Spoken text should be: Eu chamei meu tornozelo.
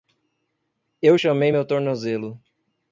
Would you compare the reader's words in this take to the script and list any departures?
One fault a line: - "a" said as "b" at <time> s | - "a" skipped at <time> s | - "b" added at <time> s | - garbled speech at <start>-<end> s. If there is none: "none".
none